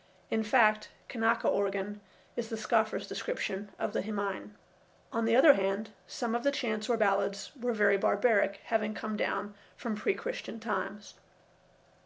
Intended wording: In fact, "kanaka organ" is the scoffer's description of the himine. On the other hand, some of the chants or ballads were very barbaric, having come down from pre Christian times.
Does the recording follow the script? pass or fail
pass